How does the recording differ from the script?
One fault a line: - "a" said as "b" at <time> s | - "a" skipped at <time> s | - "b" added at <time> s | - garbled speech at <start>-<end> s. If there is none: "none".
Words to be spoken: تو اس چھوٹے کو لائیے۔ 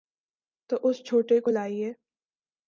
none